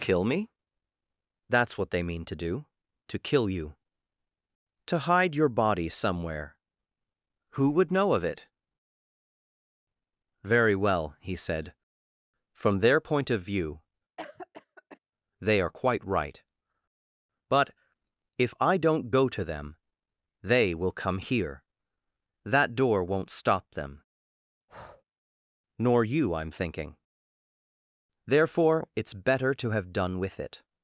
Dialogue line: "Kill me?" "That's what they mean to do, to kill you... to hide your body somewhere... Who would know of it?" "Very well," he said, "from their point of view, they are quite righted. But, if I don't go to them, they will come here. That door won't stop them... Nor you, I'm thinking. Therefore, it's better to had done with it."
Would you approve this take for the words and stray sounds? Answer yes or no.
no